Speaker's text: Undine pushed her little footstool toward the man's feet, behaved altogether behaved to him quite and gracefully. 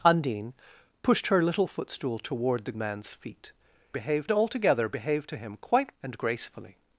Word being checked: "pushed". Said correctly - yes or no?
yes